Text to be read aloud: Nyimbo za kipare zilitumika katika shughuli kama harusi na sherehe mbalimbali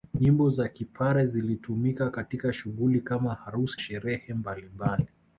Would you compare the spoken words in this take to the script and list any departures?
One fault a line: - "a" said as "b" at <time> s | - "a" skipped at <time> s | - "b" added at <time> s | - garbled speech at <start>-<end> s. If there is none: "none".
- "na" skipped at 3.8 s